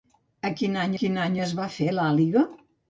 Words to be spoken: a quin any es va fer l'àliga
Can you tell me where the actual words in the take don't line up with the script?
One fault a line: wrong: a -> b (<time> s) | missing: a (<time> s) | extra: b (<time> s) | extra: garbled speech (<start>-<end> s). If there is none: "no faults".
extra: quin any (1.0 s)